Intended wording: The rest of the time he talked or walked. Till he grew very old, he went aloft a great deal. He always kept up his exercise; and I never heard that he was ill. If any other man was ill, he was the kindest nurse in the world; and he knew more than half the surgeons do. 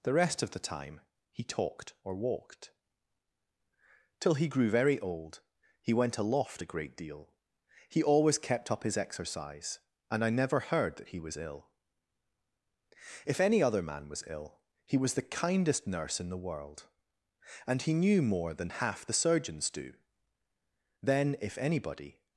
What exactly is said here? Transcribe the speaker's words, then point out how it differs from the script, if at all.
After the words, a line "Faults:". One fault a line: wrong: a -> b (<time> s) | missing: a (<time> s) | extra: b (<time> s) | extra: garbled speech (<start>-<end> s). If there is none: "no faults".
The rest of the time he talked or walked. Till he grew very old, he went aloft a great deal. He always kept up his exercise; and I never heard that he was ill. If any other man was ill, he was the kindest nurse in the world; and he knew more than half the surgeons do. Then if anybody
Faults:
extra: Then if anybody (21.0 s)